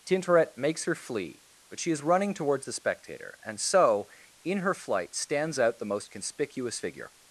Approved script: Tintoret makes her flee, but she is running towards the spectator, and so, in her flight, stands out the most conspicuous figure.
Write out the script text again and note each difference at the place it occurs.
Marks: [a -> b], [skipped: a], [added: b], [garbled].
Tintoret makes her flee, but she is running towards the spectator, and so, in her flight, stands out the most conspicuous figure.